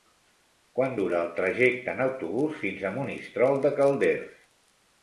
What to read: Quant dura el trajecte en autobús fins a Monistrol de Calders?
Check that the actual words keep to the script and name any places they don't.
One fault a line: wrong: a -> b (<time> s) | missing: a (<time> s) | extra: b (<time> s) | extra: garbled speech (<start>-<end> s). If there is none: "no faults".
no faults